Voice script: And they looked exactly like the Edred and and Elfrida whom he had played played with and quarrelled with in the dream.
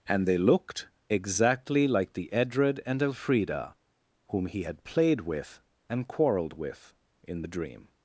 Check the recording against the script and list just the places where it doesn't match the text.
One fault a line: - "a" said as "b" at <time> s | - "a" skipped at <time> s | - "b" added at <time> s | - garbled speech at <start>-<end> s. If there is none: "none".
- "and" skipped at 3.0 s
- "played" skipped at 5.2 s